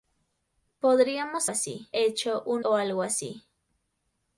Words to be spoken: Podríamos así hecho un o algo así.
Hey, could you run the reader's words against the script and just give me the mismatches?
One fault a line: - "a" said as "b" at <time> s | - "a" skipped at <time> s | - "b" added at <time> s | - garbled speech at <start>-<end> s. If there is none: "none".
none